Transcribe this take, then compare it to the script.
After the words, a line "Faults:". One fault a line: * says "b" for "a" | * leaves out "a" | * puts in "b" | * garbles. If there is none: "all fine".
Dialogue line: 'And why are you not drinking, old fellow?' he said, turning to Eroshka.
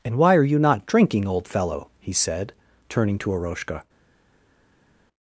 'And why are you not drinking, old fellow?' he said, turning to Eroshka.
Faults:
all fine